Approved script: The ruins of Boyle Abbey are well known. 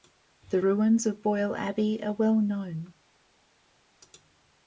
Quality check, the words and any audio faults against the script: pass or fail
pass